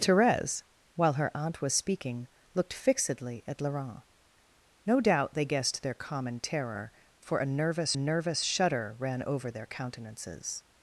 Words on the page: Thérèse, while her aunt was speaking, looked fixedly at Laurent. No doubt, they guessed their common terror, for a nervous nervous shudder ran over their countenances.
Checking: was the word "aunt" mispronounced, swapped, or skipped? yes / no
no